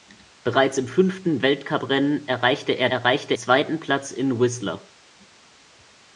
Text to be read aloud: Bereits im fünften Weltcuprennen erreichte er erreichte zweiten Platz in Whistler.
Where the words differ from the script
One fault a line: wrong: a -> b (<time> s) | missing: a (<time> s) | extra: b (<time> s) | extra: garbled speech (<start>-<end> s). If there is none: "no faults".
no faults